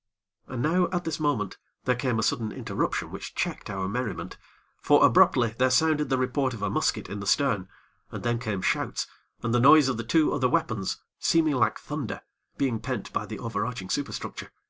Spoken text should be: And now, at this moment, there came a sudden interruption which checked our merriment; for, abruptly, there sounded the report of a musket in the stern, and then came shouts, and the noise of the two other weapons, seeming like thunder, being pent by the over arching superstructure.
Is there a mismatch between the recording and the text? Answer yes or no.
no